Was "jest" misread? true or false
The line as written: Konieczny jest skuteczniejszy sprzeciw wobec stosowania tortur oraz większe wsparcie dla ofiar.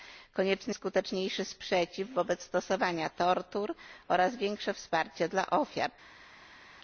true